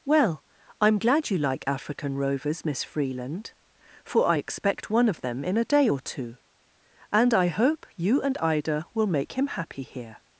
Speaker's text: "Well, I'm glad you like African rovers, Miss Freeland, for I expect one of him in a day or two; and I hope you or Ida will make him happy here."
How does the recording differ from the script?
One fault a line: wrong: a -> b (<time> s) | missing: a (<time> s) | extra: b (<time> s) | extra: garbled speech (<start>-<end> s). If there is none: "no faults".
wrong: him -> them (5.2 s)
wrong: or -> and (8.2 s)